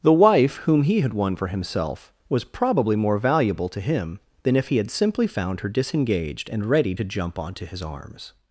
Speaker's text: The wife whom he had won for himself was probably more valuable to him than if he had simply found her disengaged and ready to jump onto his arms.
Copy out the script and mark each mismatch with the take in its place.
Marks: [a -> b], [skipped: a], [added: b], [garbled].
The wife whom he had won for himself was probably more valuable to him than if he had simply found her disengaged and ready to jump onto his arms.